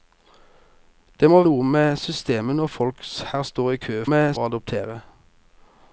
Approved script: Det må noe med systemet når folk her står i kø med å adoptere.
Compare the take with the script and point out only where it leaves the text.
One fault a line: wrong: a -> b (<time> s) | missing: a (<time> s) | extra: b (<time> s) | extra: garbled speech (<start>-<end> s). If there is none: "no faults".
no faults